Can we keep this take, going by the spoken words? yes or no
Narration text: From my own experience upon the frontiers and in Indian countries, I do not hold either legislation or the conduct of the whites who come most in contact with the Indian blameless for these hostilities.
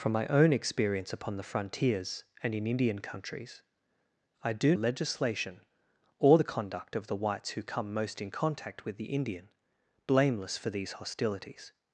no